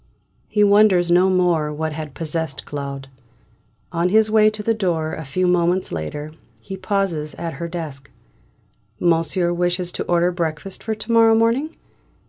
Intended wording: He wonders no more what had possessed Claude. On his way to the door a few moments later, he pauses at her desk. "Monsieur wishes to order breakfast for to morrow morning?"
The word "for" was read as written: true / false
true